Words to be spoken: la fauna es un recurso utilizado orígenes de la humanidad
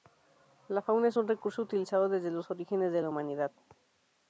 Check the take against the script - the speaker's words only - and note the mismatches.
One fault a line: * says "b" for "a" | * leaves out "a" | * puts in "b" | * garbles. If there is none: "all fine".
* puts in "desde los"